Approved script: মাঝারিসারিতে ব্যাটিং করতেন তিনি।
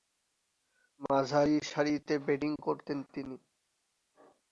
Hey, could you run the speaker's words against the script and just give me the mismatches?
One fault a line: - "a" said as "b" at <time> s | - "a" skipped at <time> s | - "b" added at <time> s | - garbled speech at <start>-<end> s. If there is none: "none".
none